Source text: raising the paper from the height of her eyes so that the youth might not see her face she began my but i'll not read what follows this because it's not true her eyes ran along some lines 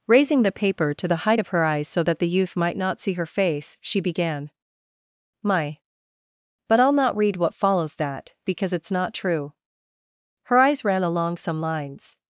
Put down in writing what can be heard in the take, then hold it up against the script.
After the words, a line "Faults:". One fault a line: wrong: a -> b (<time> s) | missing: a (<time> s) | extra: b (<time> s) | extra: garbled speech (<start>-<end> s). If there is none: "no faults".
raising the paper to the height of her eyes so that the youth might not see her face she began my but i'll not read what follows that because it's not true her eyes ran along some lines
Faults:
wrong: from -> to (0.9 s)
wrong: this -> that (8.0 s)